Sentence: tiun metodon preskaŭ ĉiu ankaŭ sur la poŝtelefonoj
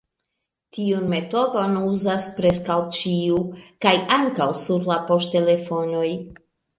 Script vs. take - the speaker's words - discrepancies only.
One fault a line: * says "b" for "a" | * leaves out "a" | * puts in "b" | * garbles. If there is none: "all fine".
* puts in "uzas"
* puts in "kaj"